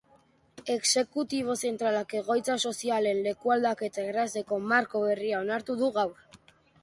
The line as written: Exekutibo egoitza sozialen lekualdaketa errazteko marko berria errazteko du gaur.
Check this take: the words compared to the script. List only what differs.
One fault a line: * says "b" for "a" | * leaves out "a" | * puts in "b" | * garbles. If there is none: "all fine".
* puts in "zentralak"
* says "onartu" for "errazteko"